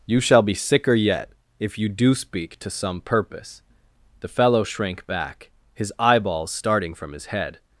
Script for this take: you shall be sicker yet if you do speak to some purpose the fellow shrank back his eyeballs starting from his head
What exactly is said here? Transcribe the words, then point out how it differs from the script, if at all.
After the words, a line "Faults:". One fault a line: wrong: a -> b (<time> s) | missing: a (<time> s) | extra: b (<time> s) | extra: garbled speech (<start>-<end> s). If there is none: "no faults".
you shall be sicker yet if you do speak to some purpose the fellow shrank back his eyeballs starting from his head
Faults:
no faults